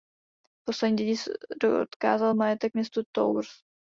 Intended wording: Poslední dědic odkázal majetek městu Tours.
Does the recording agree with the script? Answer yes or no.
yes